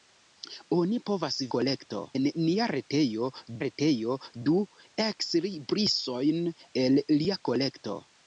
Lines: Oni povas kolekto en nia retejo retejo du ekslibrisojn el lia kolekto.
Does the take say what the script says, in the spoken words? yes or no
yes